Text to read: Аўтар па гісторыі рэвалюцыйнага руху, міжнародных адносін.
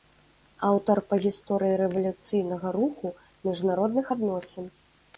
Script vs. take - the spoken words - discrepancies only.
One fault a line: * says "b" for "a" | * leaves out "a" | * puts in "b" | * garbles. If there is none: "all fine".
all fine